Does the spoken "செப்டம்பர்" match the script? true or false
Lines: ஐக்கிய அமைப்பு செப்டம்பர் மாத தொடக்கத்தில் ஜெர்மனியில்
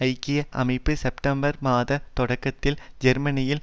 true